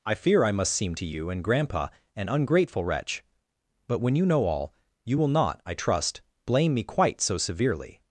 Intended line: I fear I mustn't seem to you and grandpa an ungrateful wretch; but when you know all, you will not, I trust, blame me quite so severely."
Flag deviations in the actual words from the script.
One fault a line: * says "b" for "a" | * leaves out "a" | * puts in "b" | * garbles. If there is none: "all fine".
* says "must" for "mustn't"